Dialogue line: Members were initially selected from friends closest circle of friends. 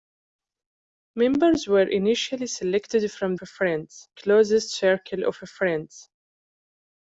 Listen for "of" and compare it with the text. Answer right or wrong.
right